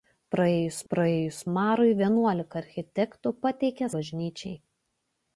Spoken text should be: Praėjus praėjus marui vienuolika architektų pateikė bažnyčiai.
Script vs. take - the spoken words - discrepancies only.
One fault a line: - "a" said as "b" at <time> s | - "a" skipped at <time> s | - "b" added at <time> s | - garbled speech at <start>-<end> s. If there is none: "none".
none